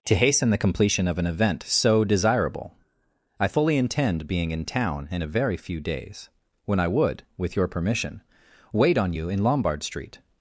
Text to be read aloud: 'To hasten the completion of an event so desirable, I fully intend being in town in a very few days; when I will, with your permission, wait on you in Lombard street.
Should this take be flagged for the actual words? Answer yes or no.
yes